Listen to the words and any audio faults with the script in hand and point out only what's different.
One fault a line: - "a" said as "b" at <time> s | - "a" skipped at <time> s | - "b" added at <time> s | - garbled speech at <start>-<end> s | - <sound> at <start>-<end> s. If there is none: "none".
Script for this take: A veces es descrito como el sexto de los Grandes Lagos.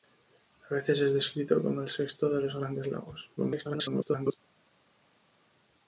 - garbled speech at 3.4-4.4 s